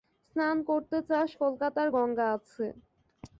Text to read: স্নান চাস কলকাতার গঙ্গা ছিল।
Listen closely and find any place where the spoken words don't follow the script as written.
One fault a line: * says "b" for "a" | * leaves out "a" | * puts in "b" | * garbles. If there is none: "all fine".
* puts in "করতে"
* says "আছে" for "ছিল"